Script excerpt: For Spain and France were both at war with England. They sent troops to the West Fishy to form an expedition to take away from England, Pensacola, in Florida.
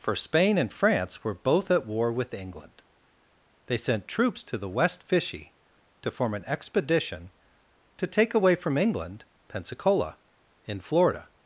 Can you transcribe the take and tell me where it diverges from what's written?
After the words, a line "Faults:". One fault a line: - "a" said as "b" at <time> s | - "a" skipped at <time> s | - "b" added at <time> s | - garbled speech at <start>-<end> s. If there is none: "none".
For Spain and France were both at war with England. They sent troops to the West Fishy to form an expedition to take away from England, Pensacola, in Florida.
Faults:
none